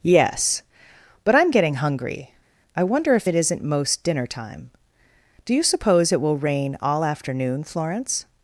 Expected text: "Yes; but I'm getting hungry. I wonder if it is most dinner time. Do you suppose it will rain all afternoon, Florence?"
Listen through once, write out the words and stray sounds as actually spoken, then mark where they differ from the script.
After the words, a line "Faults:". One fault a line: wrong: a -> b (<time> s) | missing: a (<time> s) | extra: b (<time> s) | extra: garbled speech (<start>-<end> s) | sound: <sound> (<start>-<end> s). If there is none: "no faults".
"Yes; but I'm getting hungry. I wonder if it isn't most dinner time. Do you suppose it will rain all afternoon, Florence?"
Faults:
wrong: is -> isn't (3.4 s)